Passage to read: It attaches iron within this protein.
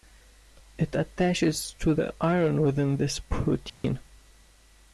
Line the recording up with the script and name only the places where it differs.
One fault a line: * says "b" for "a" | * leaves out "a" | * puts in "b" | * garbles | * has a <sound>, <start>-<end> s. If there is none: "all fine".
* puts in "to the"
* has a dropout, 3.7-3.8 s